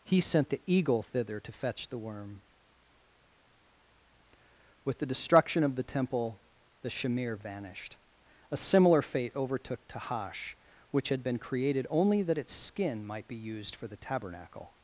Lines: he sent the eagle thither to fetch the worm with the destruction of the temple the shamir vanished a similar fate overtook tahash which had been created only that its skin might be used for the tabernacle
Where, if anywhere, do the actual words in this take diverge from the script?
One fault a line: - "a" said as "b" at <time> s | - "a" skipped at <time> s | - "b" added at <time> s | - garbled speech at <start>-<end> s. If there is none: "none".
none